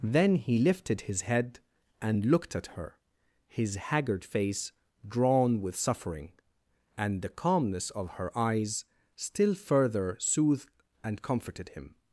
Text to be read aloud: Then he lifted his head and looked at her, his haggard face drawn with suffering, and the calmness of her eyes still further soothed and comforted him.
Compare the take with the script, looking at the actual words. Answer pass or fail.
pass